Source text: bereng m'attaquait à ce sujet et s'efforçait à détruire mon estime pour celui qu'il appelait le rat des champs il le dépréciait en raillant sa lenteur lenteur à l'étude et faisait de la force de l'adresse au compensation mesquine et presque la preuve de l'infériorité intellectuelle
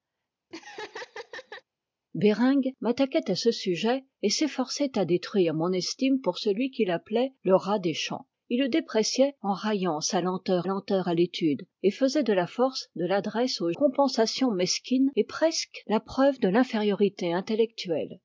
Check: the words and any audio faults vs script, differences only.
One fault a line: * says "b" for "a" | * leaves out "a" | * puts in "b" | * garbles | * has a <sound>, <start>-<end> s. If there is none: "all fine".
* has a laugh, 0.5-1.6 s